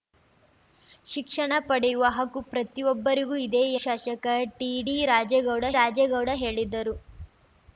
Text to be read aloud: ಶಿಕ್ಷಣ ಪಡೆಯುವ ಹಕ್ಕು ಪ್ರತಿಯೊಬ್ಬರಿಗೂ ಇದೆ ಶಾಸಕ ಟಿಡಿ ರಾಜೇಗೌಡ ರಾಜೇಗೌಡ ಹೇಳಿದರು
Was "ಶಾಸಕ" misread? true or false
false